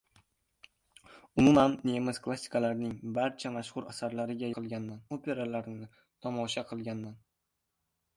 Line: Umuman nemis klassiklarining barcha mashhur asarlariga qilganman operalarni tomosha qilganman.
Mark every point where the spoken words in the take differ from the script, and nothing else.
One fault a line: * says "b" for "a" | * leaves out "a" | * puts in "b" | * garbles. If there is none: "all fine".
all fine